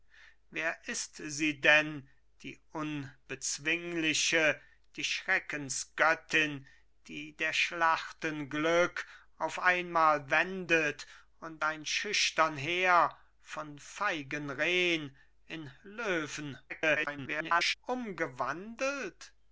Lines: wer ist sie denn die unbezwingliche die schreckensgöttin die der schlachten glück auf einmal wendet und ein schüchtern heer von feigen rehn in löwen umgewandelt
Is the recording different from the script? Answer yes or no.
yes